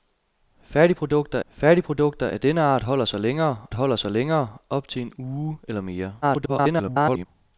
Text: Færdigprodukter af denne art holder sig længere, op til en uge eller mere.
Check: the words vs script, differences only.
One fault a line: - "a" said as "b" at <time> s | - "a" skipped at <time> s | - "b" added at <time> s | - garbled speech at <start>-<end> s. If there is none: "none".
- "færdigprodukter" added at 1.5 s
- "holder sig længere" added at 3.7 s
- garbled speech at 6.2-7.3 s